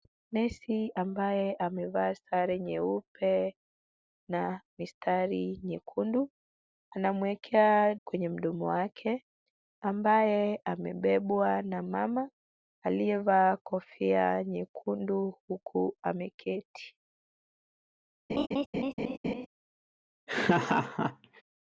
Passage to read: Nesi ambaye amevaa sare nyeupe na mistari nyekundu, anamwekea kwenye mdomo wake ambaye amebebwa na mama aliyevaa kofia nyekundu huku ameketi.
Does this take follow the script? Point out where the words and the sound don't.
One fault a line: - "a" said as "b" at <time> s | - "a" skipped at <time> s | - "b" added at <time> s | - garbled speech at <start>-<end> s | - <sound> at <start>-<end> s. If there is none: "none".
- laugh at 18.3-19.5 s
- laugh at 20.3-21.4 s